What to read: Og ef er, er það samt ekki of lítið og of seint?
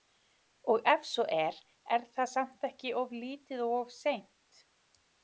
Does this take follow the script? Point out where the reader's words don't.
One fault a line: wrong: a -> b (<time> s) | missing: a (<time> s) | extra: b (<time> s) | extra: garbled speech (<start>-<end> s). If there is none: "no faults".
extra: svo (1.1 s)